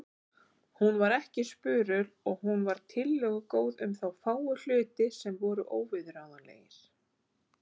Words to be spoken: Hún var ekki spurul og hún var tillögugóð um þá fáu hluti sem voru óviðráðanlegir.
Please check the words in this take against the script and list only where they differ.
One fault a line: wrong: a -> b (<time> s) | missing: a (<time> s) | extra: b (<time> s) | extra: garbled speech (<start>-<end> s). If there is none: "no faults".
no faults